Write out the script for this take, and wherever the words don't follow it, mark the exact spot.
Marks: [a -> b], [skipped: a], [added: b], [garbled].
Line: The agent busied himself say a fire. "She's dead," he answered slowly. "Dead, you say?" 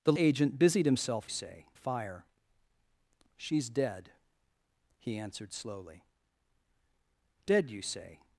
The agent busied himself say a fire. "She's dead," he answered slowly. "Dead, you say?"